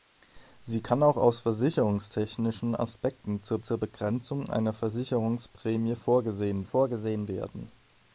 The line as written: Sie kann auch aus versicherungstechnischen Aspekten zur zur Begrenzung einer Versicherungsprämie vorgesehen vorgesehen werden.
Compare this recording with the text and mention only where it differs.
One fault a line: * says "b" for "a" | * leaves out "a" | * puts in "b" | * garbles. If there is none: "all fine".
all fine